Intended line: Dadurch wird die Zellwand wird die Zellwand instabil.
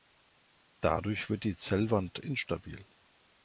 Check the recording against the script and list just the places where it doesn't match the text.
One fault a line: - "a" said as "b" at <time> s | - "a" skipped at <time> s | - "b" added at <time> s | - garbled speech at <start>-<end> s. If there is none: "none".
- "wird die Zellwand" skipped at 2.2 s